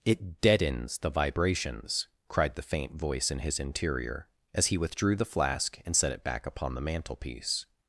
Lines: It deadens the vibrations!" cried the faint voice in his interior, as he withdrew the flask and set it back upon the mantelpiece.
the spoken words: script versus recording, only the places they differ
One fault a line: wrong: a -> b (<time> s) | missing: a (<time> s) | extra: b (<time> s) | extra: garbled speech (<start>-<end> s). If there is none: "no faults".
no faults